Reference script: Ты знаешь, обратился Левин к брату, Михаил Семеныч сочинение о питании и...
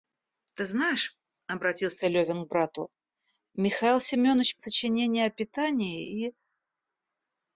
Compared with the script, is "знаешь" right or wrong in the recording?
right